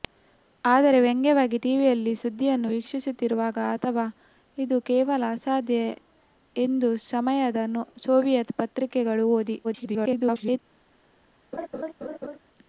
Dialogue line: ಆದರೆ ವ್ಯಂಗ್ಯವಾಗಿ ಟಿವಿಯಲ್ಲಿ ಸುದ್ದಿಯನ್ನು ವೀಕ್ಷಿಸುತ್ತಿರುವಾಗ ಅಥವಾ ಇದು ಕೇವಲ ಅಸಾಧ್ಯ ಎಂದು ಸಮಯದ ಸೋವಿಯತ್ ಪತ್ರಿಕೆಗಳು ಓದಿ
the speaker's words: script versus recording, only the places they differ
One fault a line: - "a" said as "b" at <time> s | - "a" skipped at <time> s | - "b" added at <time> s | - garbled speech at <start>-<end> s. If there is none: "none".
- garbled speech at 9.6-10.6 s